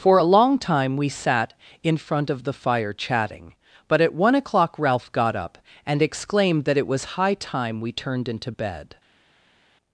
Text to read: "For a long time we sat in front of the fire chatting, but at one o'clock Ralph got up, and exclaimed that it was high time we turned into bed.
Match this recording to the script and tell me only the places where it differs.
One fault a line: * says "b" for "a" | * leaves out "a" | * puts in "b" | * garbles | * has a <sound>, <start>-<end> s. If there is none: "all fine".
all fine